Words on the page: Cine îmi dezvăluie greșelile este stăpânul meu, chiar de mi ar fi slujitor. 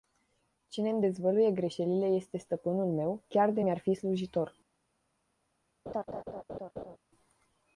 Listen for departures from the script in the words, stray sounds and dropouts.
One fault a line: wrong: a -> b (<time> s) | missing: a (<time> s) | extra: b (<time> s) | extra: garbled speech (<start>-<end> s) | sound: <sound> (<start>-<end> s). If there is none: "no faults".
sound: laugh (5.9-7.0 s)